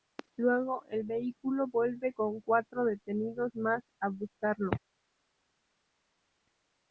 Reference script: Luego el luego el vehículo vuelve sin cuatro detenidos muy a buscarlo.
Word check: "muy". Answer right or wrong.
wrong